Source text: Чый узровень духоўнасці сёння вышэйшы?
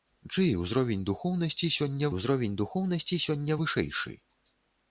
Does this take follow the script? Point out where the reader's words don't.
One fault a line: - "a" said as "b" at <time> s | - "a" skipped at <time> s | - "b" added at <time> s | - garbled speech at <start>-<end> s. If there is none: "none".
- "узровень духоўнасці сёння" added at 2.1 s